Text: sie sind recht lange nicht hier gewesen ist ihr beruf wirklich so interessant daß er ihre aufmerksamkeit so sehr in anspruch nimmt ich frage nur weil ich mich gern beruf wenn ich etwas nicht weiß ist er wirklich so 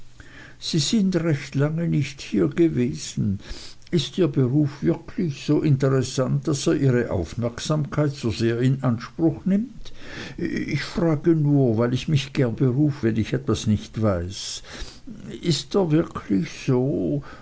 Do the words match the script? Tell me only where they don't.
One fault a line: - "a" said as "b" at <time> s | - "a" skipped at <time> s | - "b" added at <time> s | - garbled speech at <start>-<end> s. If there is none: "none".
none